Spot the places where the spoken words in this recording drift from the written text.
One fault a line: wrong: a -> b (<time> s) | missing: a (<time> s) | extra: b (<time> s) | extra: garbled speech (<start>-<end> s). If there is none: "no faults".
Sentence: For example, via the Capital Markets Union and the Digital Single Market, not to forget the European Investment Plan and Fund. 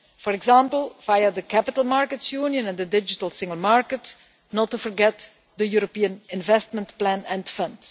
no faults